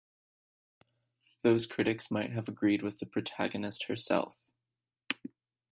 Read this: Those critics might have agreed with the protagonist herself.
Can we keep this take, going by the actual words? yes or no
yes